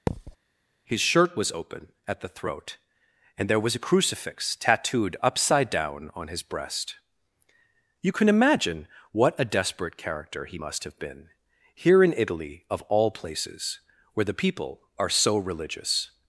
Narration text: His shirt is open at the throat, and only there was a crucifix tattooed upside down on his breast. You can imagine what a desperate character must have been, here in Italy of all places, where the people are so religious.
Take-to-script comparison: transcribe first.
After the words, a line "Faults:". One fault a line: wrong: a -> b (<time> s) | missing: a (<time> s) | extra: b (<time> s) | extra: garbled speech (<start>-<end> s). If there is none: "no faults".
His shirt was open at the throat, and there was a crucifix tattooed upside down on his breast. You can imagine what a desperate character he must have been, here in Italy of all places, where the people are so religious.
Faults:
wrong: is -> was (1.4 s)
missing: only (3.5 s)
extra: he (10.4 s)